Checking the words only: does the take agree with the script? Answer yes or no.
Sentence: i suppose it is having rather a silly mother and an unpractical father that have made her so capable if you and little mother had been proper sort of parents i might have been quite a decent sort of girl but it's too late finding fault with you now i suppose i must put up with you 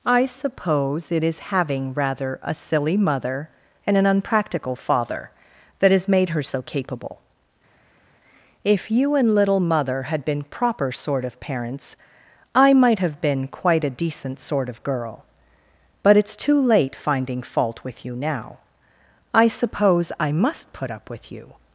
no